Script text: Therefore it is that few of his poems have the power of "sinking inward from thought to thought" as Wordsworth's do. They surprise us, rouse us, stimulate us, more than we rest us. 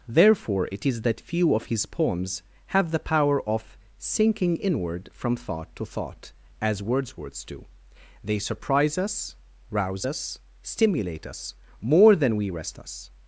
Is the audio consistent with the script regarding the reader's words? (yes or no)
yes